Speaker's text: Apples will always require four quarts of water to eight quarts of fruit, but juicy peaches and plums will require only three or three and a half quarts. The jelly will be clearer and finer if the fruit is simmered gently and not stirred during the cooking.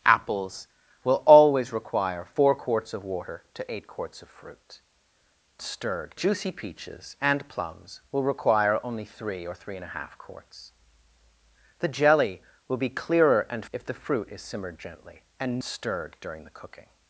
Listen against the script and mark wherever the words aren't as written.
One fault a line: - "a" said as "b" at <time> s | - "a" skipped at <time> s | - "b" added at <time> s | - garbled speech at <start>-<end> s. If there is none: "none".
- "but" said as "stirred" at 5.6 s
- "finer" skipped at 13.6 s
- "not" skipped at 15.6 s